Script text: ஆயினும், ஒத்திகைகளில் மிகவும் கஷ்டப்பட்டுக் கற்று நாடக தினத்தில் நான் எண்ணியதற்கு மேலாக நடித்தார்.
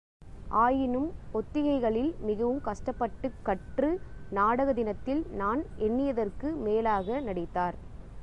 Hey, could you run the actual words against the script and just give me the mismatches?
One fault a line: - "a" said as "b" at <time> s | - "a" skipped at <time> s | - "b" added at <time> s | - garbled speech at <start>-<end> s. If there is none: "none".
none